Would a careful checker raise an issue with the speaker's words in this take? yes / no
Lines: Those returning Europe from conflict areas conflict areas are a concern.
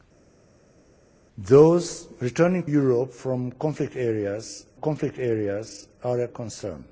no